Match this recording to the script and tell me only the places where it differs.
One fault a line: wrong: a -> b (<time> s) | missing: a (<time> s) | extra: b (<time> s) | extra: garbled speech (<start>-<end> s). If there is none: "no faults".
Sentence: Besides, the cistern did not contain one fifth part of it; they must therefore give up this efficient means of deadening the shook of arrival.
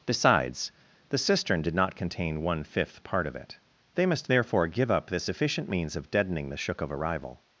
no faults